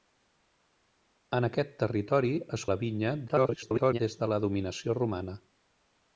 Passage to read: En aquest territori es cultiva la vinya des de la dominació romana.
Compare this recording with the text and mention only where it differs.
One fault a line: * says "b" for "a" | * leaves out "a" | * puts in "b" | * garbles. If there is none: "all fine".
* leaves out "cultiva"
* garbles